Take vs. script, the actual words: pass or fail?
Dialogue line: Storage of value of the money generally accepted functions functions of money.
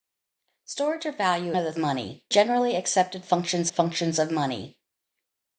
pass